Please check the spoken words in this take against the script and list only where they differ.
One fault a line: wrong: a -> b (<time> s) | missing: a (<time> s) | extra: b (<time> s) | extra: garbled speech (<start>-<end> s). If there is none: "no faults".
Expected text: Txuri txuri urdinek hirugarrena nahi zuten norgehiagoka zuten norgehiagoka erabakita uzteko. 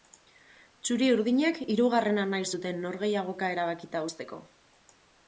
missing: txuri (1.1 s)
missing: zuten norgehiagoka (3.5 s)